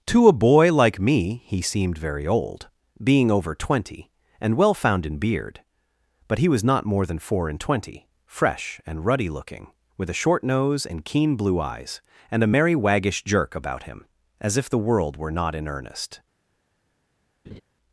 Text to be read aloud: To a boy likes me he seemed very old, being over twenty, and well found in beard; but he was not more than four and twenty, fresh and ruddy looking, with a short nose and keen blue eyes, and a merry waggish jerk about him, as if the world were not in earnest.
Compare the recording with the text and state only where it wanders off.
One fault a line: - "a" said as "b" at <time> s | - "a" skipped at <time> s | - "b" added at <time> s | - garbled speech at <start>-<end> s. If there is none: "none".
- "likes" said as "like" at 0.7 s